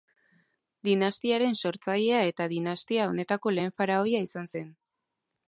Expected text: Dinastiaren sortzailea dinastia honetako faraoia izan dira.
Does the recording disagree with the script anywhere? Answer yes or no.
yes